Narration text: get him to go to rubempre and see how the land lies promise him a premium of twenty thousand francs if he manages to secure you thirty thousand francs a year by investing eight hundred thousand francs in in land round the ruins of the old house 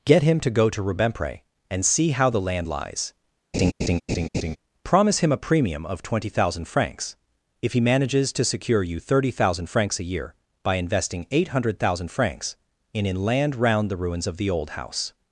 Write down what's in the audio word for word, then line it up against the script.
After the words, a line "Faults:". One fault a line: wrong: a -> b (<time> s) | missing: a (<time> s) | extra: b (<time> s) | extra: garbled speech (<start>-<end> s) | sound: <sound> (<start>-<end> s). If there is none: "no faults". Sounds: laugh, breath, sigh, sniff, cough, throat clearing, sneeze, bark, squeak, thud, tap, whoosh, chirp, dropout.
get him to go to rubempre and see how the land lies promise him a premium of twenty thousand francs if he manages to secure you thirty thousand francs a year by investing eight hundred thousand francs in in land round the ruins of the old house
Faults:
sound: laugh (3.5-4.6 s)